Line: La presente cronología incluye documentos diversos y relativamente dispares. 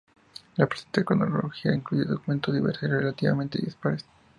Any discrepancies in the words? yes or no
no